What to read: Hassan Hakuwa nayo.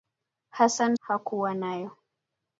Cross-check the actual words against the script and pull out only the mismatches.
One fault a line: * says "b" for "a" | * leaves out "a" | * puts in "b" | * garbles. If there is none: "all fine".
all fine